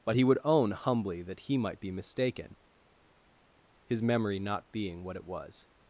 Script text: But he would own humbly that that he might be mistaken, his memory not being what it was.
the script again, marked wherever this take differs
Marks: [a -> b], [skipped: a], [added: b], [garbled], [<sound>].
But he would own humbly that [skipped: that] he might be mistaken, his memory not being what it was.